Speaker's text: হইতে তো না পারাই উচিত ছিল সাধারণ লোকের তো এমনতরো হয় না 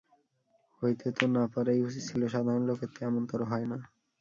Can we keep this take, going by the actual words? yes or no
yes